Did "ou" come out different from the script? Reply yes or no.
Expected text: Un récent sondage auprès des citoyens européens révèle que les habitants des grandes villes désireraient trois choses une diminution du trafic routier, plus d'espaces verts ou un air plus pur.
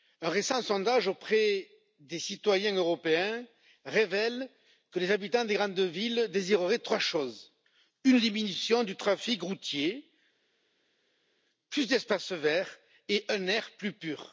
yes